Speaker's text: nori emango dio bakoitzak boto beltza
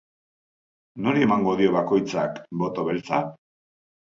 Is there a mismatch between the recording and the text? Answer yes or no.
no